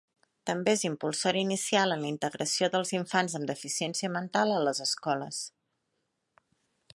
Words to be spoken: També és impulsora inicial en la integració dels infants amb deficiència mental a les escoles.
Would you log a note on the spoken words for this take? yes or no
no